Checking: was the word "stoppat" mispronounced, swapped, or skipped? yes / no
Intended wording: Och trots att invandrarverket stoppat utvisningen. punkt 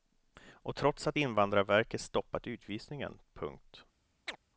no